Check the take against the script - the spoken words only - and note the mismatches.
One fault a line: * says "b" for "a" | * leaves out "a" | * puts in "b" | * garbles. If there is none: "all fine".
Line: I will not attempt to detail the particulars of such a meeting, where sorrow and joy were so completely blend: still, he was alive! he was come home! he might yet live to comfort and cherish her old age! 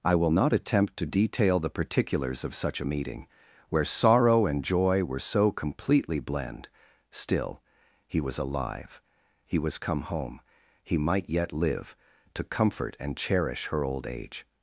all fine